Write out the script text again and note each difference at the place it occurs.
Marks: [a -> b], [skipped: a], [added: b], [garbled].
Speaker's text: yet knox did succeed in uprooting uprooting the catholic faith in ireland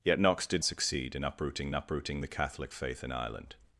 yet knox did succeed in uprooting uprooting the catholic faith in ireland